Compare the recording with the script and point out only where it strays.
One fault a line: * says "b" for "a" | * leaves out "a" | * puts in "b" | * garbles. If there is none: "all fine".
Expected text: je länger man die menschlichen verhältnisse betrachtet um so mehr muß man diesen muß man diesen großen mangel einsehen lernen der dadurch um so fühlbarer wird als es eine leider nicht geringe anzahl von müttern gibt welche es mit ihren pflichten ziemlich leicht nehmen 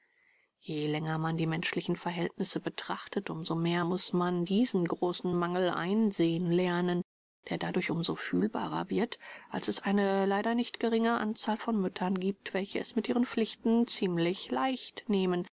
* leaves out "muß man diesen"